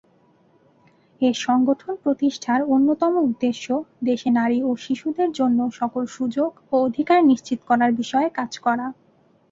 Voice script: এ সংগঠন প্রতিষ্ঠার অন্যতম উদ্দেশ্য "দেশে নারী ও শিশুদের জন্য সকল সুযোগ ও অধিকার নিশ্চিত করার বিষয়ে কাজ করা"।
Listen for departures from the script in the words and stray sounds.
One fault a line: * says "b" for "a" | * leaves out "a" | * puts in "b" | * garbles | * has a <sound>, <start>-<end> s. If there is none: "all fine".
all fine